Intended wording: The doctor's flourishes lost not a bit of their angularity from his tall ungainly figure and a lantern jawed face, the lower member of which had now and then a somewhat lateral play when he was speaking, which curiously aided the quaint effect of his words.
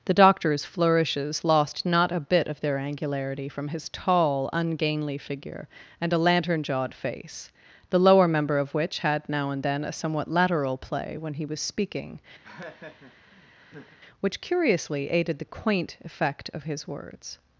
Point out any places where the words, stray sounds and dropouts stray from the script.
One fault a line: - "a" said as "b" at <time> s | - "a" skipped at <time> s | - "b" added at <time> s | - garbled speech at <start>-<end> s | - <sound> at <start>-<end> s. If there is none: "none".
- laugh at 12.4-14.0 s